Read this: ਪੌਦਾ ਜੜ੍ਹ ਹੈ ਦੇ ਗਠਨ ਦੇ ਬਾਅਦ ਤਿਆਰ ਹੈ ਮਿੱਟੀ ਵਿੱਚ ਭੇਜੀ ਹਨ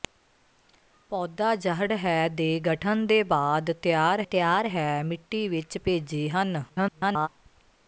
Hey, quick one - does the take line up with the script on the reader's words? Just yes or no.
no